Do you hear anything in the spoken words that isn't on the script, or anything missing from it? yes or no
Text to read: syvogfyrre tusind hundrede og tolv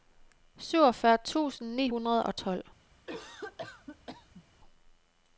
yes